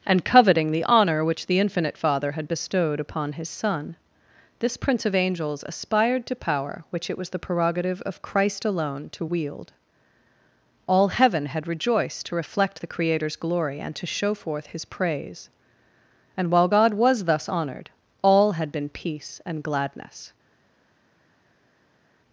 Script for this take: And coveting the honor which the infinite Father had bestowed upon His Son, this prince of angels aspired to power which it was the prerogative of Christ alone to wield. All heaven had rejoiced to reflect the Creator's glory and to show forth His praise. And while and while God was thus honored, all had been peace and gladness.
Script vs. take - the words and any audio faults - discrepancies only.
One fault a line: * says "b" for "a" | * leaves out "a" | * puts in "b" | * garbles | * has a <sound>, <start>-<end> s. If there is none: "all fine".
* leaves out "and while"